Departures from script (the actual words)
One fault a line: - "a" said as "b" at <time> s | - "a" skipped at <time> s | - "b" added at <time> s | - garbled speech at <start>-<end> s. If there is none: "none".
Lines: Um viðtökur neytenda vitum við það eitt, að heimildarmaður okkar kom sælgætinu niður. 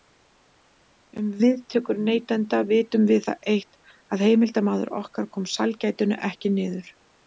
- "ekki" added at 6.3 s